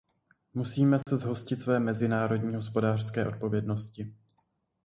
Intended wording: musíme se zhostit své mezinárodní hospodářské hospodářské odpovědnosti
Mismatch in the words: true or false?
true